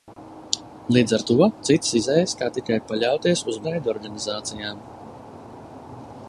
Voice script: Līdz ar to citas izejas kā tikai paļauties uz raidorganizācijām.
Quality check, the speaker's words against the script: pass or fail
pass